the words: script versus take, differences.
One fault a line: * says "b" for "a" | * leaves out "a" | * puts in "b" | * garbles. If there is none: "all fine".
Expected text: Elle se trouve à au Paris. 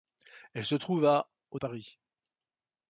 all fine